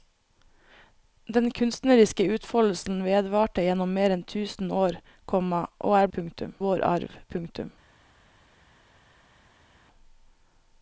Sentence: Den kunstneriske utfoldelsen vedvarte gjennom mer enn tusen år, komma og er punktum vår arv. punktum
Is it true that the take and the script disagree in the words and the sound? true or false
false